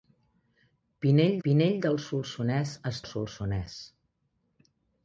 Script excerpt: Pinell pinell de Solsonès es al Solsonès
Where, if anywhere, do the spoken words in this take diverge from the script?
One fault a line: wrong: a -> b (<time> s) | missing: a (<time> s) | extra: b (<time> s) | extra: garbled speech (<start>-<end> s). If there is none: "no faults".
no faults